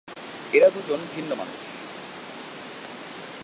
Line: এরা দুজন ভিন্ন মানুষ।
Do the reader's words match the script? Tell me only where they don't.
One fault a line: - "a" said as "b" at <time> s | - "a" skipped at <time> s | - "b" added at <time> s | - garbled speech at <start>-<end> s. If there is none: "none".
none